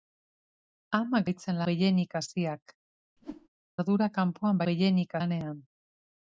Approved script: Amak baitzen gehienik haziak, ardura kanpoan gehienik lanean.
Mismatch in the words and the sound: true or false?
true